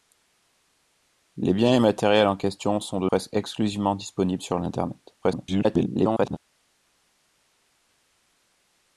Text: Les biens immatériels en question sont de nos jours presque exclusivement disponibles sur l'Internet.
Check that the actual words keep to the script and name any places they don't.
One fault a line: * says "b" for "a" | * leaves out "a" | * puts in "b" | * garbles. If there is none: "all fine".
* leaves out "nos jours"
* garbles